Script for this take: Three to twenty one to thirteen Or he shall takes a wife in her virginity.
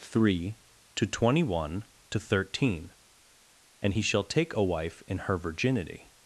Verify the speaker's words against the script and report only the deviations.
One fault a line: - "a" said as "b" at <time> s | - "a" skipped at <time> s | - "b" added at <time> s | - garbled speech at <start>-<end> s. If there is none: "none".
- "Or" said as "And" at 3.8 s
- "takes" said as "take" at 4.2 s